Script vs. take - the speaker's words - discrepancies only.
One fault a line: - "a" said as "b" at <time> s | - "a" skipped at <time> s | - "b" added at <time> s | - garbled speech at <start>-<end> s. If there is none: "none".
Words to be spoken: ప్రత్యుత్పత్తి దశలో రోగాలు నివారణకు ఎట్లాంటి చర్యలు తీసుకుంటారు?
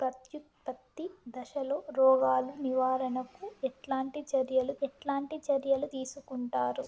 - "ఎట్లాంటి చర్యలు" added at 4.8 s